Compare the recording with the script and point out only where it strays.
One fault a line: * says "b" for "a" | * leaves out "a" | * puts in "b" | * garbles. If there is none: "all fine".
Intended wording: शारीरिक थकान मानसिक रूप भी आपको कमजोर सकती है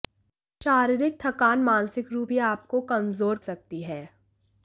all fine